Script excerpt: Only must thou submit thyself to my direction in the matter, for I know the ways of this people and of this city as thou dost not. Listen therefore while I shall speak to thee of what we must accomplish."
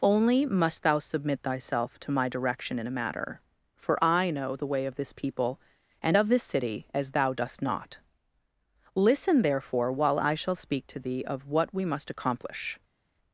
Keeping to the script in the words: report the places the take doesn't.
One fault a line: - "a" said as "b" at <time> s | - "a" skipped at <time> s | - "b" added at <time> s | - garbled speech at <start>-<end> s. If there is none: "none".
- "the" said as "a" at 2.9 s
- "ways" said as "way" at 4.7 s